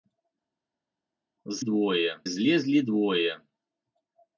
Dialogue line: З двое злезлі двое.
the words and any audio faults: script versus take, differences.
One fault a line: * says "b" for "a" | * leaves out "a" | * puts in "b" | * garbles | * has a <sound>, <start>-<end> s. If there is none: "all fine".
all fine